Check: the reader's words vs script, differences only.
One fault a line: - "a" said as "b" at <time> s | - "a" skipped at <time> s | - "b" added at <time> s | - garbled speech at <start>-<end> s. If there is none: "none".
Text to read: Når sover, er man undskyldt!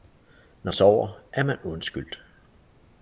none